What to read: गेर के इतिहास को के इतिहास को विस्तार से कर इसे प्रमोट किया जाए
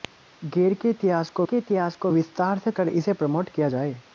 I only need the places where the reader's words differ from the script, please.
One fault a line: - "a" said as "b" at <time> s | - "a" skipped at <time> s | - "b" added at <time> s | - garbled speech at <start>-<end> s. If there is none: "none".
none